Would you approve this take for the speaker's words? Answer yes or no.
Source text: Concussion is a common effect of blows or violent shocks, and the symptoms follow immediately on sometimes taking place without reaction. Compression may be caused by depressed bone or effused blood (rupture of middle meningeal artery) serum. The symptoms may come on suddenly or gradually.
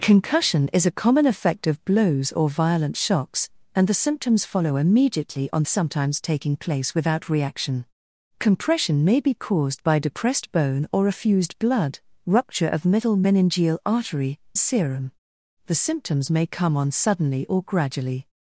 yes